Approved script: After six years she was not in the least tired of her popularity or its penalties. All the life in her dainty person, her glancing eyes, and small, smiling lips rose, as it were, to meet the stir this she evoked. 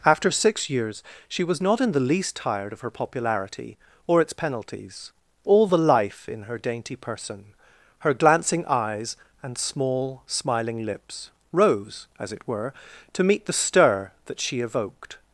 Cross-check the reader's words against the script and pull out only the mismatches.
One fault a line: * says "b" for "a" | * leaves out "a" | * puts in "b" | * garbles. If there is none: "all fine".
* says "that" for "this"